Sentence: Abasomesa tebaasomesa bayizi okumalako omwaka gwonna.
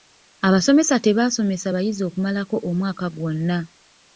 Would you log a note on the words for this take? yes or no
no